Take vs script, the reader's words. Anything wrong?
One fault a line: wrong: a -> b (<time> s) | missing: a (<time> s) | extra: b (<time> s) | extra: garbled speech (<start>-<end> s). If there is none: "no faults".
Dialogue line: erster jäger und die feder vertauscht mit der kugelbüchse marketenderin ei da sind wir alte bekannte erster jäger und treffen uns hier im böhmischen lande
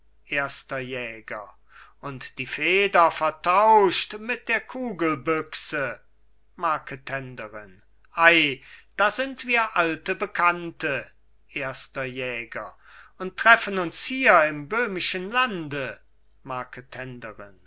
no faults